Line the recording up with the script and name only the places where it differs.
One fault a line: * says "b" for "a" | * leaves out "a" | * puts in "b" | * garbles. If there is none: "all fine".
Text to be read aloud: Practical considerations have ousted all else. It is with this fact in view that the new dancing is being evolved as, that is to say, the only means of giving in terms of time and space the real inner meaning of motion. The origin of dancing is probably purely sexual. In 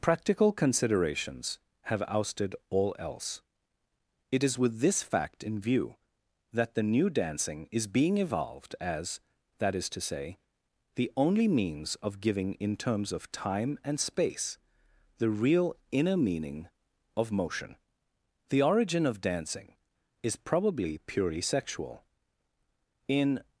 all fine